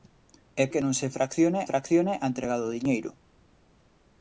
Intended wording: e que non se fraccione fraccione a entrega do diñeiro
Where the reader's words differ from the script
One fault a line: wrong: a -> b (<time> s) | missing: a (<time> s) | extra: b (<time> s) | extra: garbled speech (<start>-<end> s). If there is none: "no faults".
no faults